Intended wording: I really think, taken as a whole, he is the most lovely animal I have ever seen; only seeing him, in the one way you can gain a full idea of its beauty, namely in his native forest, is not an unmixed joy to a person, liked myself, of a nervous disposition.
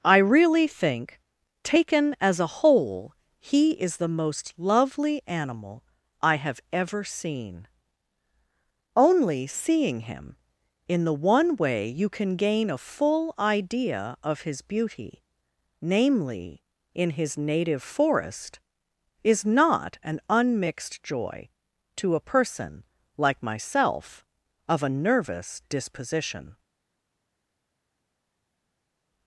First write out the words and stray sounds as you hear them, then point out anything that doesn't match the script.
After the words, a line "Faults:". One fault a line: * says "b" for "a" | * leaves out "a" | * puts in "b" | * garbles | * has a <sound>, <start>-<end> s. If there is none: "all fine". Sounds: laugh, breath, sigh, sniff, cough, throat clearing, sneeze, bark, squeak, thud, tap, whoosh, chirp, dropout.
I really think, taken as a whole, he is the most lovely animal I have ever seen; only seeing him, in the one way you can gain a full idea of his beauty, namely in his native forest, is not an unmixed joy to a person, like myself, of a nervous disposition.
Faults:
* says "his" for "its"
* says "like" for "liked"